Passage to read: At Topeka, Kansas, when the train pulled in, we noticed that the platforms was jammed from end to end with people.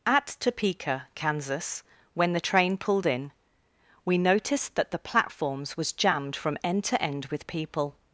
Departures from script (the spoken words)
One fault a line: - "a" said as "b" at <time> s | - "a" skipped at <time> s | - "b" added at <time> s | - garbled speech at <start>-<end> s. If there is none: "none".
none